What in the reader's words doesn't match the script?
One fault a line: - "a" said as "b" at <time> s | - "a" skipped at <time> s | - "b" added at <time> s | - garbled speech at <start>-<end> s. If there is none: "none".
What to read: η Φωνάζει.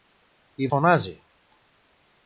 none